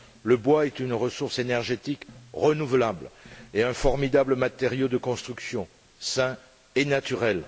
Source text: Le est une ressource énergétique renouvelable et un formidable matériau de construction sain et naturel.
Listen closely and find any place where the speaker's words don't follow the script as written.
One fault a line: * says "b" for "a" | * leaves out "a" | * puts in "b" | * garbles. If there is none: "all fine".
* puts in "bois"